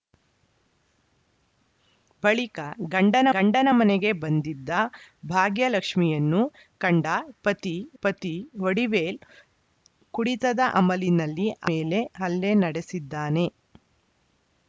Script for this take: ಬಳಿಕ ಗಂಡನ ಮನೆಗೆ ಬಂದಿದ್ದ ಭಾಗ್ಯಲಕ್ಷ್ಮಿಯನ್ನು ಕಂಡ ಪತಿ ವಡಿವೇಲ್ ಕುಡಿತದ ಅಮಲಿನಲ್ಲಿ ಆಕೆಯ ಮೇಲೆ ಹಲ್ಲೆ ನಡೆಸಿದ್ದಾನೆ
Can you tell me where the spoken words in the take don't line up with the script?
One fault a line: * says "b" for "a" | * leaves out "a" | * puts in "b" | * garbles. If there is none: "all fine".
* puts in "ಗಂಡನ"
* puts in "ಪತಿ"
* leaves out "ಆಕೆಯ"